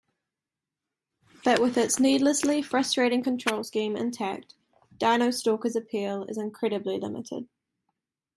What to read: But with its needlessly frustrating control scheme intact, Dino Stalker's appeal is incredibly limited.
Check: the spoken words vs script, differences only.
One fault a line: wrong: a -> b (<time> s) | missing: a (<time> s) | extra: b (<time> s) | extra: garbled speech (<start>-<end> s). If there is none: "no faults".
no faults